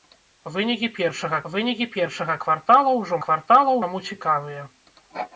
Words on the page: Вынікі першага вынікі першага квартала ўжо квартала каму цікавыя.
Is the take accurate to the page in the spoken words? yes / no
yes